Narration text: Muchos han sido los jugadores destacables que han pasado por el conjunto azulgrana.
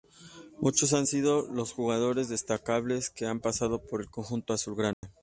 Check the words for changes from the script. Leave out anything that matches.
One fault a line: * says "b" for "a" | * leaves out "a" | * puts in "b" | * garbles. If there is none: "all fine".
all fine